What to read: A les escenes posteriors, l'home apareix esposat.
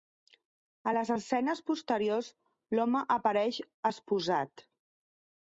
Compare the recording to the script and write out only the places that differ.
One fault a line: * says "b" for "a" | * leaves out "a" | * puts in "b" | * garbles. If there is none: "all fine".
all fine